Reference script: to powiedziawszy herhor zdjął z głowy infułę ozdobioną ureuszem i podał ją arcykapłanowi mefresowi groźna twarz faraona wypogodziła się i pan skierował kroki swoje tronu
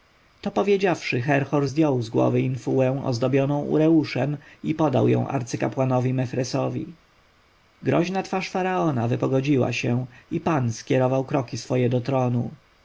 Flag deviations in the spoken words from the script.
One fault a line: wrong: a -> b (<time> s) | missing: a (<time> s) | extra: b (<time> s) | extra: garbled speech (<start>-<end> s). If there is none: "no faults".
extra: do (11.9 s)